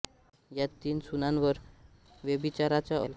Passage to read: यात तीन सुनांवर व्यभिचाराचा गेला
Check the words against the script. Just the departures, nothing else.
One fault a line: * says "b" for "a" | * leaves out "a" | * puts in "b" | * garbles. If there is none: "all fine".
all fine